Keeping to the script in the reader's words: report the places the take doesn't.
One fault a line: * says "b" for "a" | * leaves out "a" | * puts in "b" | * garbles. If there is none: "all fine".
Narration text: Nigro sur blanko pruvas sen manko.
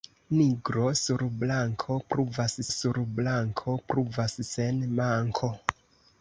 * puts in "sur blanko pruvas"